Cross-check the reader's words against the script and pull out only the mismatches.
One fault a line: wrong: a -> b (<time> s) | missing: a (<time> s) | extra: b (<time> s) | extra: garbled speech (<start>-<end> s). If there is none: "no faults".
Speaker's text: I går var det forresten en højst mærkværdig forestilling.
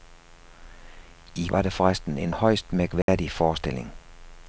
missing: går (1.5 s)